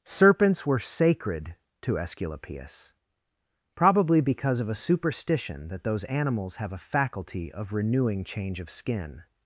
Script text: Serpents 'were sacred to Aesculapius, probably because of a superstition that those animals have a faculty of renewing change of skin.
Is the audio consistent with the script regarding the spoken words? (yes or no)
yes